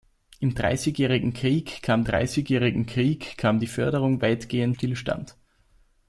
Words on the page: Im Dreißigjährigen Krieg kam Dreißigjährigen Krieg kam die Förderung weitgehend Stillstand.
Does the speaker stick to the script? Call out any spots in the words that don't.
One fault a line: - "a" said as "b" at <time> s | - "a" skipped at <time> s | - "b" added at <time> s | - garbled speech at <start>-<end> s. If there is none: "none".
none